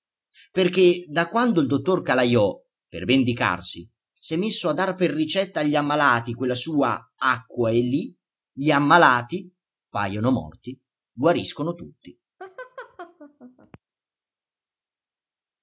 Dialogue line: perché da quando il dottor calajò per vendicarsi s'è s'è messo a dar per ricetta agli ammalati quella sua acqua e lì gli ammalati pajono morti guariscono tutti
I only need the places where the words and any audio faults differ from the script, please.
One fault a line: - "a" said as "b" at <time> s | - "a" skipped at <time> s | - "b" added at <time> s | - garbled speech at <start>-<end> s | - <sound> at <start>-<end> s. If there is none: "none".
- "s'è" skipped at 4.4 s
- laugh at 12.4-13.8 s